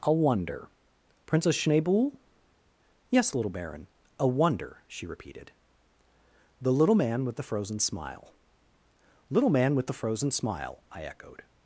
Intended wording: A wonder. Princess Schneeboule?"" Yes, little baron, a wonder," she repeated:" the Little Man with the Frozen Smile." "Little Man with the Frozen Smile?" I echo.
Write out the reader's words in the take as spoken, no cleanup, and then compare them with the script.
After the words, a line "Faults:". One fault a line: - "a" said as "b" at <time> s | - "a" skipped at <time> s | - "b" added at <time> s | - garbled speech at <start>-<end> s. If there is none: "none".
A wonder. Princess Schneeboule?"" Yes, little baron, a wonder," she repeated:" the Little Man with the Frozen Smile." "Little Man with the Frozen Smile?" I echoed.
Faults:
- "echo" said as "echoed" at 11.0 s